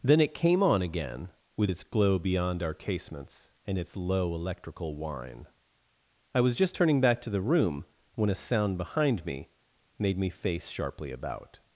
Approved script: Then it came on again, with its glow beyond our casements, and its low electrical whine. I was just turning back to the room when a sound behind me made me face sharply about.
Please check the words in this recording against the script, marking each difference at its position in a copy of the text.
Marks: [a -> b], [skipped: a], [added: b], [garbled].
Then it came on again, with its glow beyond our casements, and its low electrical whine. I was just turning back to the room when a sound behind me made me face sharply about.